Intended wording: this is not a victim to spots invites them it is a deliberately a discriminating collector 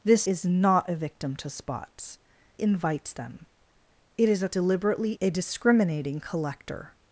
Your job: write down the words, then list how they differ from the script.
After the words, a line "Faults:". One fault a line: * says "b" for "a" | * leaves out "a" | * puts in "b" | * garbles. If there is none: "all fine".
this is not a victim to spots invites them it is a deliberately a discriminating collector
Faults:
all fine